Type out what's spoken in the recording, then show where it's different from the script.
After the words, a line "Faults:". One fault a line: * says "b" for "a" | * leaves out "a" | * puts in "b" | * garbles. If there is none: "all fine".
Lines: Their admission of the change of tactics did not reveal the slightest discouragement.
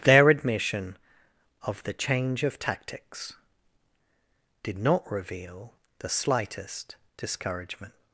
Their admission of the change of tactics did not reveal the slightest discouragement.
Faults:
all fine